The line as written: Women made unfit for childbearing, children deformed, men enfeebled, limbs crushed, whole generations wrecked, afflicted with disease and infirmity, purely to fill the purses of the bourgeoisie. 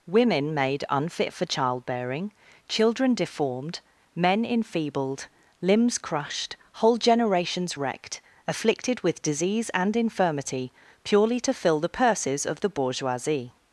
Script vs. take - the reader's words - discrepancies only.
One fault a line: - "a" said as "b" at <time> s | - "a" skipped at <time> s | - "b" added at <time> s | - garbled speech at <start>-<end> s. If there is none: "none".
none